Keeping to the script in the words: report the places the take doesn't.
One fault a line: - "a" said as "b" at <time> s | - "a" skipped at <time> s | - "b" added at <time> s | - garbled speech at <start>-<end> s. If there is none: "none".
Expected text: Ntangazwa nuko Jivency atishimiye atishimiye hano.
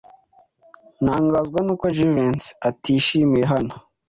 - "atishimiye" skipped at 3.4 s